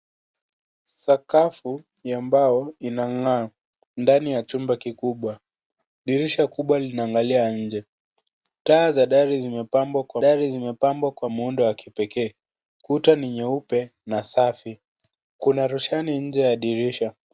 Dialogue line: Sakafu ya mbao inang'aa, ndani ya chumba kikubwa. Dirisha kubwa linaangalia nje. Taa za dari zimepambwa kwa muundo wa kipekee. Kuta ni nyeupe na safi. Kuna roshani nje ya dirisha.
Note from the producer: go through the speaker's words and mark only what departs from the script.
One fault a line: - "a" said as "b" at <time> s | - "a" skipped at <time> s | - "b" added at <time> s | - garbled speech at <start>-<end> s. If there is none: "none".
- "dari zimepambwa kwa" added at 10.2 s